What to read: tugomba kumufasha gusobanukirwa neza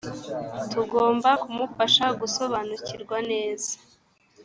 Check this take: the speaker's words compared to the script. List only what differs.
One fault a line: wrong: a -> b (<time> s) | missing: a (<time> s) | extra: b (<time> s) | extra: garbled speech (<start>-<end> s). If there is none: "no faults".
no faults